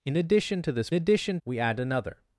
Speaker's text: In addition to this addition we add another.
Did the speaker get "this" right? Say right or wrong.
right